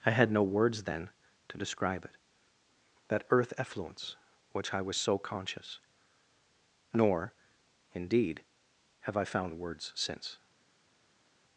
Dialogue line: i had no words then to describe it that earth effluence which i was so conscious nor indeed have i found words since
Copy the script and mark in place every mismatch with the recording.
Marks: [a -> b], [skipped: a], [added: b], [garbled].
i had no words then to describe it that earth effluence which i was so conscious nor indeed have i found words since